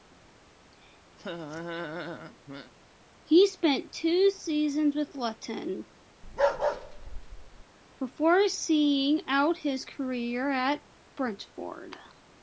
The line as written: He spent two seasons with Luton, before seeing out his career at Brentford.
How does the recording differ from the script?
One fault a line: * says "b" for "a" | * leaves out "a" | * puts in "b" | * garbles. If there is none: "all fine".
all fine